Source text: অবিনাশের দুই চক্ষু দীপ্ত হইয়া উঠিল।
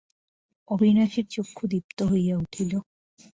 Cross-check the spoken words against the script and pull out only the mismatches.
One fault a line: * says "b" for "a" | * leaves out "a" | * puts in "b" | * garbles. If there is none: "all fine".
* leaves out "দুই"